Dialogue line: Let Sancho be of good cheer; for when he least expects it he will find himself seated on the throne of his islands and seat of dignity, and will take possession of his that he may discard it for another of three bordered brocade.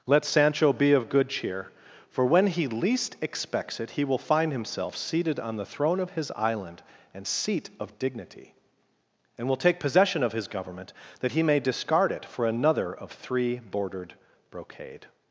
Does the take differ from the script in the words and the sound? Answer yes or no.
yes